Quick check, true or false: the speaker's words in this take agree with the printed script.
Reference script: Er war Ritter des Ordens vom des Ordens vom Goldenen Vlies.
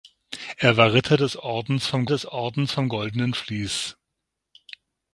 true